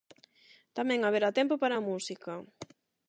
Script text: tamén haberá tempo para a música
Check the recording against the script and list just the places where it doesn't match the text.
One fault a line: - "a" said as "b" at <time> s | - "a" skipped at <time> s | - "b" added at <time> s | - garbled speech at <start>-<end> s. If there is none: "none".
none